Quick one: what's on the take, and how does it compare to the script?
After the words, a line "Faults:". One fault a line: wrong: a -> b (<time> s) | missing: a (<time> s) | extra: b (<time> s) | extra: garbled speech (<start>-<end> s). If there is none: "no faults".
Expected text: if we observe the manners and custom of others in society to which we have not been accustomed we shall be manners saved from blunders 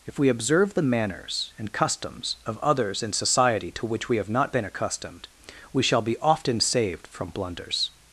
if we observe the manners and customs of others in society to which we have not been accustomed we shall be often saved from blunders
Faults:
wrong: custom -> customs (1.7 s)
wrong: manners -> often (6.2 s)